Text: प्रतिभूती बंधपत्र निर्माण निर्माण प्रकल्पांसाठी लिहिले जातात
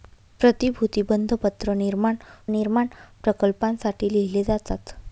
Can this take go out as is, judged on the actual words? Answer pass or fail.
pass